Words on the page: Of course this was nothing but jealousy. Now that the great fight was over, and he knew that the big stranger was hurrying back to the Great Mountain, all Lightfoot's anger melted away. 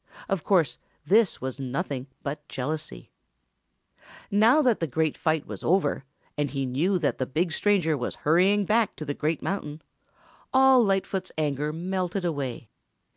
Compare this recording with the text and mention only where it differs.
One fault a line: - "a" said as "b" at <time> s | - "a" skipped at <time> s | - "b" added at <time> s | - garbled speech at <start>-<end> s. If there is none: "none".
none